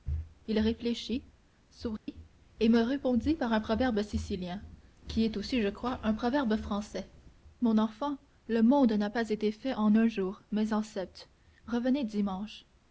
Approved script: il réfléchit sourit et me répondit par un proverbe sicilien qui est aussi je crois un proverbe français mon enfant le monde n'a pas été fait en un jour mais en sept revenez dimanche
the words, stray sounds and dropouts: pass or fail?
fail